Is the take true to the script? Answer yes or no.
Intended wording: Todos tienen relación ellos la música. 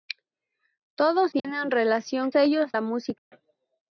yes